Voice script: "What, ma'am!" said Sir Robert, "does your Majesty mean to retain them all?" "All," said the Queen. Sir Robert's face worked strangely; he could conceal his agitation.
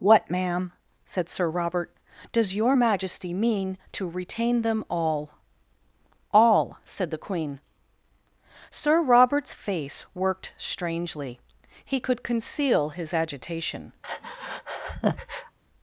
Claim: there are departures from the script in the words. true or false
false